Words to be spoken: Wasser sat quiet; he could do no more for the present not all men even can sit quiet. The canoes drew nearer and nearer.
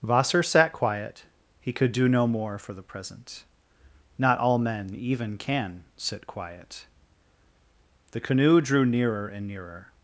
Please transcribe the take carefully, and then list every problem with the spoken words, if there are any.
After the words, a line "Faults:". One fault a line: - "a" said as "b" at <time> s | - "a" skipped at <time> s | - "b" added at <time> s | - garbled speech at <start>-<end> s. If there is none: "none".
Wasser sat quiet; he could do no more for the present not all men even can sit quiet. The canoe drew nearer and nearer.
Faults:
- "canoes" said as "canoe" at 8.2 s